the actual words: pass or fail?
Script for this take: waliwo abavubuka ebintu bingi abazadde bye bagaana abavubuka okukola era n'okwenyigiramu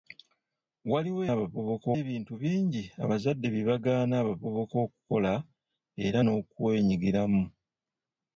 pass